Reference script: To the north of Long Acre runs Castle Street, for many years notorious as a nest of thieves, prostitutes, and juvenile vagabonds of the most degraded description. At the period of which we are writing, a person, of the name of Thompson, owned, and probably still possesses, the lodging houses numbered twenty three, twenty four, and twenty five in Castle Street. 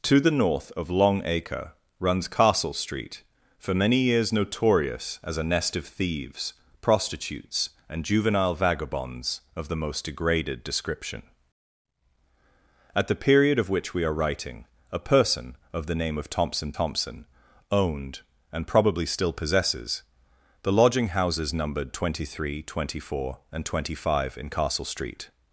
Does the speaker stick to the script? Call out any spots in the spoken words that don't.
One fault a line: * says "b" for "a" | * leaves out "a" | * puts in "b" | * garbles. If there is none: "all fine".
* puts in "Thompson"